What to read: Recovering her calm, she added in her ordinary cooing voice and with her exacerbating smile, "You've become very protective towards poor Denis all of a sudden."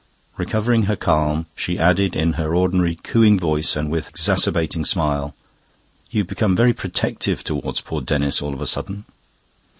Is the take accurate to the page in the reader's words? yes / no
no